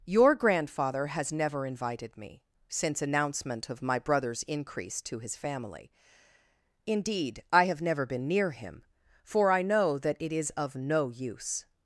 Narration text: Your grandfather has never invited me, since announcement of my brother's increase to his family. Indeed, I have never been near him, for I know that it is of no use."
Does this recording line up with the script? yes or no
yes